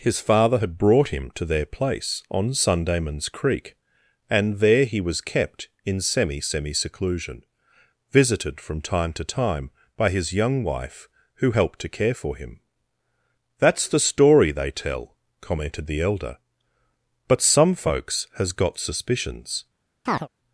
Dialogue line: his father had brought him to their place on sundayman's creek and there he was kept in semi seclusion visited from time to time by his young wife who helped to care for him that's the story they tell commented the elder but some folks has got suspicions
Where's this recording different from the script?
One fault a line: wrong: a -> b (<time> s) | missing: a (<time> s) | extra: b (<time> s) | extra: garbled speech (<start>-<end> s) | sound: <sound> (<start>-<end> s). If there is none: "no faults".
extra: semi (6.4 s)
sound: chirp (20.1-20.3 s)